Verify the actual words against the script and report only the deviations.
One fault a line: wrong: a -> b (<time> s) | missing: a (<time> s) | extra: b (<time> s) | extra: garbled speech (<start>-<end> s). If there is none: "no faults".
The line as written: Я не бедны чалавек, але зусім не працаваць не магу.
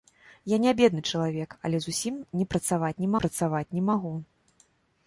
extra: працаваць не (3.2 s)